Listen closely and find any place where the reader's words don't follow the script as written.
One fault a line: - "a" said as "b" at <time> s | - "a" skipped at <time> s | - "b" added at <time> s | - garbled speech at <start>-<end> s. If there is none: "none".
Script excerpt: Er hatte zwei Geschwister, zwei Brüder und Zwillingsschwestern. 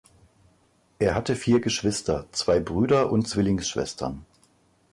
- "zwei" said as "vier" at 1.3 s